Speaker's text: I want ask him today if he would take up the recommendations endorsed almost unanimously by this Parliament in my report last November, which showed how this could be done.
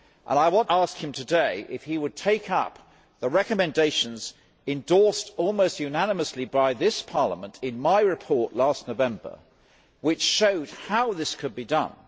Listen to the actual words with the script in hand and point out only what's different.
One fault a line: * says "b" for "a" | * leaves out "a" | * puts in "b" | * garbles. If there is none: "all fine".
all fine